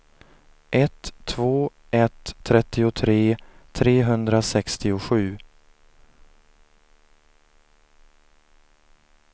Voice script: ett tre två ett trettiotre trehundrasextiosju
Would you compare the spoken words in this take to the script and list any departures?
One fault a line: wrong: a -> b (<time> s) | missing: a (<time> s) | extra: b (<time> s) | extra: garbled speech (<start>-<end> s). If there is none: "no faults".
missing: tre (1.1 s)